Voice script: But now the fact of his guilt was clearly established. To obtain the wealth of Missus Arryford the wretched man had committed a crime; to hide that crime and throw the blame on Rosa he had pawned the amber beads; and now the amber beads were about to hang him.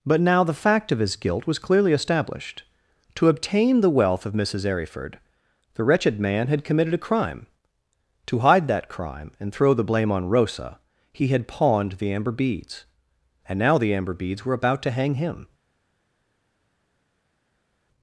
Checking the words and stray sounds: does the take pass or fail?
pass